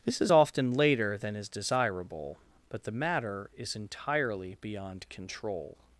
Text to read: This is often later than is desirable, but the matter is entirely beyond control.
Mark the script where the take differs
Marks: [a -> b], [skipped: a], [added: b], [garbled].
This is often later than is desirable, but the matter is entirely beyond control.